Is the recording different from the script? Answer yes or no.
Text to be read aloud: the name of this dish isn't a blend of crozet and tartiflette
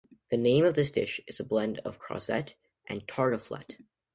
yes